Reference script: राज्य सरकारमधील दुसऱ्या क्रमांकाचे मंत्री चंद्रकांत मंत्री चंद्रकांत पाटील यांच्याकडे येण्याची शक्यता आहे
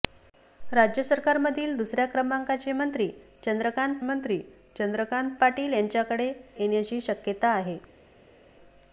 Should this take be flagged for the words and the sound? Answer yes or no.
no